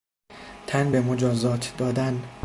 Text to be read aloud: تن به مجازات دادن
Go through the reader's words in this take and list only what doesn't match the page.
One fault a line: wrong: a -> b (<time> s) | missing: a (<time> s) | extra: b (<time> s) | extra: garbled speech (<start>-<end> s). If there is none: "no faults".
no faults